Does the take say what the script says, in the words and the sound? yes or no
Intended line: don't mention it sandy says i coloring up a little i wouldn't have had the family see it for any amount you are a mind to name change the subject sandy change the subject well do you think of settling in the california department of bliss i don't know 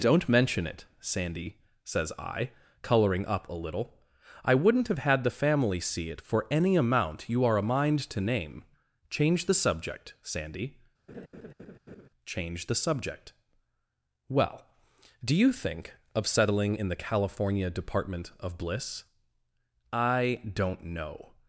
no